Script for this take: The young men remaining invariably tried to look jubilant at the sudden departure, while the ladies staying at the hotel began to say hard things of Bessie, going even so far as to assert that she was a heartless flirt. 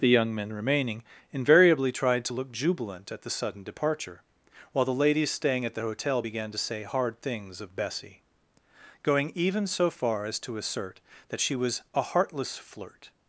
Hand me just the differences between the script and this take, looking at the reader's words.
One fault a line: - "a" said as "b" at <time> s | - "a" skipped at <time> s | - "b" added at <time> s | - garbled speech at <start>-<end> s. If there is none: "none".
none